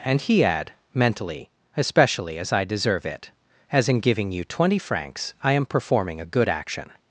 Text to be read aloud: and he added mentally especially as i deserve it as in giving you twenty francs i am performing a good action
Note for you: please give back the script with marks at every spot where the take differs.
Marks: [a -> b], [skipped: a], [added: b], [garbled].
and he [added -> add] mentally especially as i deserve it as in giving you twenty francs i am performing a good action